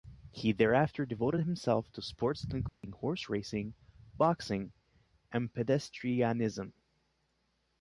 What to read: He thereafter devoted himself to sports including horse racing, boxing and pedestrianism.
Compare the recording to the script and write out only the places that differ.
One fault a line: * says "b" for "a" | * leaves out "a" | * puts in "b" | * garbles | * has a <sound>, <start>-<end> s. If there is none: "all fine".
* has a dropout, 2.7-2.8 s